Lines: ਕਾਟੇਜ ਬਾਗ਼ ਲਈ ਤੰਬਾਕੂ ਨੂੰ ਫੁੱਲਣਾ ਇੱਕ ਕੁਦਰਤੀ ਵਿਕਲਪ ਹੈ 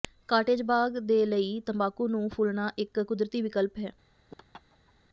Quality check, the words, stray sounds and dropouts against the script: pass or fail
fail